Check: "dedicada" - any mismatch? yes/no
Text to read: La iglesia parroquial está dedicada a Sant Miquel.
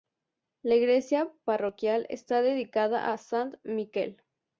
no